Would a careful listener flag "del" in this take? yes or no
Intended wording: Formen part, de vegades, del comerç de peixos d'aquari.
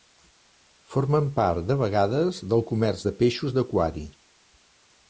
no